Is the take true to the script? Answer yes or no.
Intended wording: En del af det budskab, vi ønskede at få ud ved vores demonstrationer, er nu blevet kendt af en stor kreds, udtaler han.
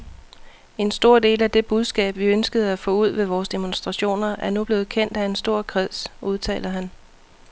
no